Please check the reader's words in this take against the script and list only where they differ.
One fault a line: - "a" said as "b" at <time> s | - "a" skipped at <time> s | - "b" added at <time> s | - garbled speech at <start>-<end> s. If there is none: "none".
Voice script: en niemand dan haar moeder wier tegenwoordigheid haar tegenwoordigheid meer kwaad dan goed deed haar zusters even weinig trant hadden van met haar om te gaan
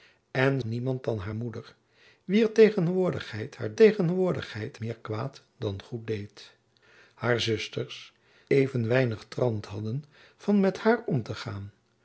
none